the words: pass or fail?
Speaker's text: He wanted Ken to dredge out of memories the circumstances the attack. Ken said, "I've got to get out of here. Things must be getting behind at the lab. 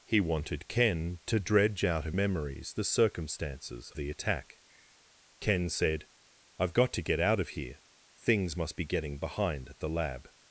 pass